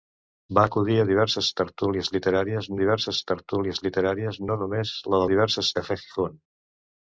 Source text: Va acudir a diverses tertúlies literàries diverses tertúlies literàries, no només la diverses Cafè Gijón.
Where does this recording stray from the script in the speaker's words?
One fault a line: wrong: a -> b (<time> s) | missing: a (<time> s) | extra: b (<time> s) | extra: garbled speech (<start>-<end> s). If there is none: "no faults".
no faults